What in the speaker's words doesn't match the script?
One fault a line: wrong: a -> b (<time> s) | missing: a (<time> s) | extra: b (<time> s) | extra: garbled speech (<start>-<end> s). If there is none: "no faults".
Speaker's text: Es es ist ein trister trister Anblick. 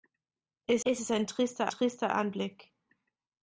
no faults